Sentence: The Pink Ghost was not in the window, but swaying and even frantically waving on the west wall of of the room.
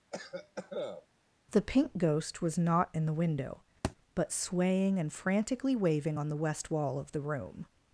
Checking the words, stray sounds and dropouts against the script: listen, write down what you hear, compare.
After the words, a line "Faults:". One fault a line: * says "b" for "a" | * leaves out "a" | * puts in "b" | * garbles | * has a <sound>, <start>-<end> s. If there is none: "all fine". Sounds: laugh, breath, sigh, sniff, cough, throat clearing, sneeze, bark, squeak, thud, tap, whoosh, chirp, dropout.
The Pink Ghost was not in the window, but swaying and frantically waving on the west wall of the room.
Faults:
* has a cough, 0.1-1.1 s
* has a thud, 3.8-4.0 s
* leaves out "even"
* leaves out "of"